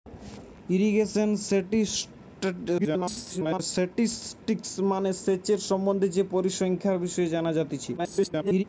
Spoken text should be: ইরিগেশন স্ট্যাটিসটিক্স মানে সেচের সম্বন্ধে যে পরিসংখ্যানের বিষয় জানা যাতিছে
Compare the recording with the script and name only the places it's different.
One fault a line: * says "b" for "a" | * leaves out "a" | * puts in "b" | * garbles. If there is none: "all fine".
* garbles
* garbles